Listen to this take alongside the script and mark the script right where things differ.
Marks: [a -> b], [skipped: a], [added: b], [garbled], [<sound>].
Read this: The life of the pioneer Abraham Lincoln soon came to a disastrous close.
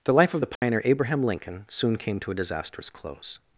The life of the pioneer [dropout] Abraham Lincoln soon came to a disastrous close.